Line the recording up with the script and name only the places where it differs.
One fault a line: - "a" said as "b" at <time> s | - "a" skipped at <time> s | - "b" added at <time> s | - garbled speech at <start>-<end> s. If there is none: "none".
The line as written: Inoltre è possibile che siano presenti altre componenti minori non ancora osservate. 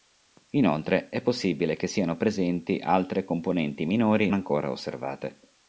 - "non" skipped at 4.3 s